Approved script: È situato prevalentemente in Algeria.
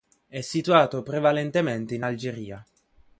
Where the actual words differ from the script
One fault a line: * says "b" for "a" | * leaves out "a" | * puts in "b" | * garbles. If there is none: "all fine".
all fine